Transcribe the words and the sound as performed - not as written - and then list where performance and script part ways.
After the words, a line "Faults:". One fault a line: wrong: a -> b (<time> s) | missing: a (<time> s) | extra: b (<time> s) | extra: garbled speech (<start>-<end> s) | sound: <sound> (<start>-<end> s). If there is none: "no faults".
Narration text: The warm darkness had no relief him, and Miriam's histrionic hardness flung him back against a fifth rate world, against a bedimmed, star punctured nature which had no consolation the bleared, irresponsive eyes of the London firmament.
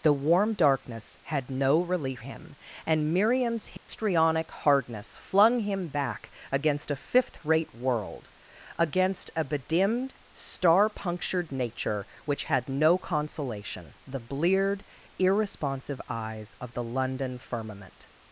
The warm darkness had no relief him, and Miriam's histrionic hardness flung him back against a fifth rate world, against a bedimmed, star punctured nature which had no consolation the bleared, irresponsive eyes of the London firmament.
Faults:
sound: dropout (3.8-3.9 s)